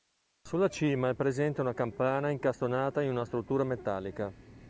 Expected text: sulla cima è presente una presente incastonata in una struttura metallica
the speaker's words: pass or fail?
fail